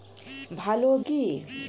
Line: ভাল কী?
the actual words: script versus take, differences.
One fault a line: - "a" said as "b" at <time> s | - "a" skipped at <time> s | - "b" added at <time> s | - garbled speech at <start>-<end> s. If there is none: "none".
none